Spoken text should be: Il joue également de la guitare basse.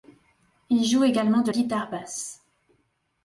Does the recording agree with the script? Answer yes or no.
no